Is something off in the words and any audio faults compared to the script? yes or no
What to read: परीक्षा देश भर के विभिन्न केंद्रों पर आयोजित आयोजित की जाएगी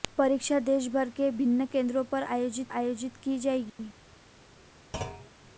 yes